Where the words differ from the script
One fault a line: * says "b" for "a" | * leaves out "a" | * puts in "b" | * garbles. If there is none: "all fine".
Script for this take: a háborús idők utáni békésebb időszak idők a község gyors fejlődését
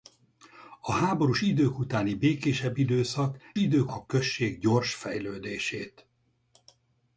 all fine